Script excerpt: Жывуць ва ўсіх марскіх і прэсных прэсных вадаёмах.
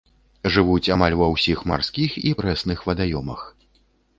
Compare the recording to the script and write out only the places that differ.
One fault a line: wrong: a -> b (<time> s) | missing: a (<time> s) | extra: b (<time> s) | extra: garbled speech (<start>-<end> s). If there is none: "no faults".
extra: амаль (0.9 s)
missing: прэсных (2.9 s)